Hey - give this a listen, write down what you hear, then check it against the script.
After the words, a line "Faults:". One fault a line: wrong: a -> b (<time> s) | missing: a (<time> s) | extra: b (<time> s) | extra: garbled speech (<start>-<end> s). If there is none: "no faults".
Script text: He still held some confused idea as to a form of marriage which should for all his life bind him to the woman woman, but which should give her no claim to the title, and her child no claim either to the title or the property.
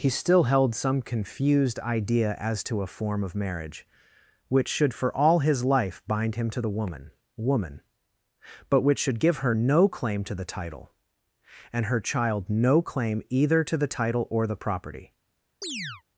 He still held some confused idea as to a form of marriage which should for all his life bind him to the woman woman, but which should give her no claim to the title, and her child no claim either to the title or the property.
Faults:
no faults